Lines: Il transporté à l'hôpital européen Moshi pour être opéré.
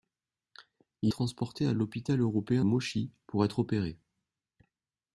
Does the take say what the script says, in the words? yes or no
yes